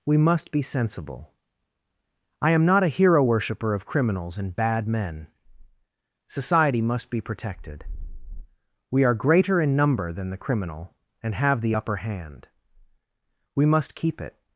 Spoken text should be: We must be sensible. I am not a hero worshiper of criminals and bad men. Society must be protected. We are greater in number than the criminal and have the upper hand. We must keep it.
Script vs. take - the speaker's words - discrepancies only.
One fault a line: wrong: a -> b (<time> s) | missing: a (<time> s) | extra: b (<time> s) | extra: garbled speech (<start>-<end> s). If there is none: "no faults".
no faults